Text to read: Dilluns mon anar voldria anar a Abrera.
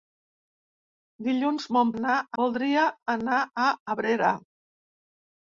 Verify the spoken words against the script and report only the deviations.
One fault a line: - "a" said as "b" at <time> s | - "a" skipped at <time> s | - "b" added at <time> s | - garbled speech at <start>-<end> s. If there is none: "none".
none